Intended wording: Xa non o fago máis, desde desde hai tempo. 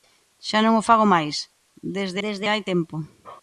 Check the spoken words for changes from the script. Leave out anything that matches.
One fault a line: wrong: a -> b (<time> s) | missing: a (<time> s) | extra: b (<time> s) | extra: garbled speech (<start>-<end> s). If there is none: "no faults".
no faults